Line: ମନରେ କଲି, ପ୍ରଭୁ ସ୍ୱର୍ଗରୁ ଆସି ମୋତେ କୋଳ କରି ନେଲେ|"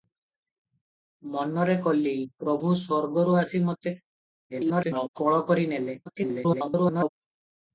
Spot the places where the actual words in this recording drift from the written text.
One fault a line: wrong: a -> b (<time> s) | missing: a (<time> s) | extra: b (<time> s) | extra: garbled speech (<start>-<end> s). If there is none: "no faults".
extra: garbled speech (4.5-5.1 s)
extra: garbled speech (6.1-7.1 s)